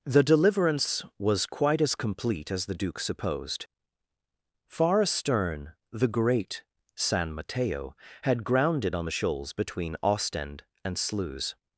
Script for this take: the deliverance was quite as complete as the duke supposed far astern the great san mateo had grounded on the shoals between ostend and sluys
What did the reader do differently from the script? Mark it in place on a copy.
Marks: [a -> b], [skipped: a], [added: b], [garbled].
the deliverance was quite as complete as the duke supposed far astern the great san mateo had grounded on the shoals between ostend and sluys